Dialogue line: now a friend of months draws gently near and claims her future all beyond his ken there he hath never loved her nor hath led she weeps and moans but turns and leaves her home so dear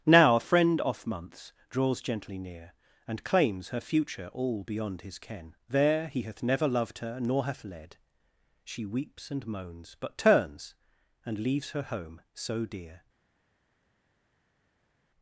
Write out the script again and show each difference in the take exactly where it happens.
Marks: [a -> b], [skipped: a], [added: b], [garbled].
now a friend [of -> off] months draws gently near and claims her future all beyond his ken there he hath never loved her nor hath led she weeps and moans but turns and leaves her home so dear